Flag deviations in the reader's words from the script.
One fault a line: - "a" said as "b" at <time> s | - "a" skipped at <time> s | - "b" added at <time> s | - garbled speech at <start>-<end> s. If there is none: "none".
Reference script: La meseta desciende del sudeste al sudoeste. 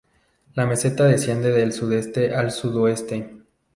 none